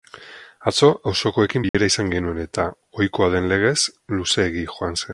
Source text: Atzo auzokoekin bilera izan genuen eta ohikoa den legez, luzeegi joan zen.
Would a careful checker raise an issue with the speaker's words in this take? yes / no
no